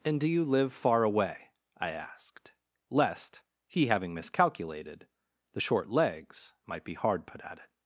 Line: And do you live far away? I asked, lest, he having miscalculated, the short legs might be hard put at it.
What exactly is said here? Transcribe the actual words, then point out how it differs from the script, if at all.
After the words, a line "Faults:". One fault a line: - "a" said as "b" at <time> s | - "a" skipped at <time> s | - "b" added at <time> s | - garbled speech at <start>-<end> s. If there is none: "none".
And do you live far away? I asked, lest, he having miscalculated, the short legs might be hard put at it.
Faults:
none